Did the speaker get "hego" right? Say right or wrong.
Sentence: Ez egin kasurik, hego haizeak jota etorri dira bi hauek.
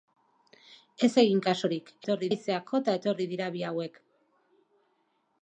wrong